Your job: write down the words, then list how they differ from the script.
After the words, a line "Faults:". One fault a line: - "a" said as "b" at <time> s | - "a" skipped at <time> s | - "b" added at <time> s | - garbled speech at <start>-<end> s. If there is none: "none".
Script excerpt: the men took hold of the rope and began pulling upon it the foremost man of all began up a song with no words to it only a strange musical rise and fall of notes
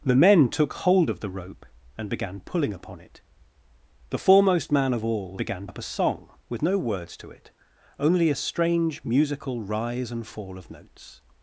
the men took hold of the rope and began pulling upon it the foremost man of all began up a song with no words to it only a strange musical rise and fall of notes
Faults:
none